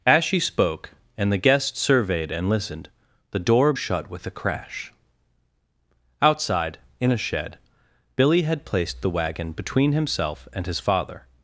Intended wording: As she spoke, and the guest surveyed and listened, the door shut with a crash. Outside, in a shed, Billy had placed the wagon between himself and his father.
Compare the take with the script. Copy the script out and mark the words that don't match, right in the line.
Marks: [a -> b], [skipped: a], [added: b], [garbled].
As she spoke, and the guest surveyed and listened, the door shut with a crash. Outside, in a shed, Billy had placed the wagon between himself and his father.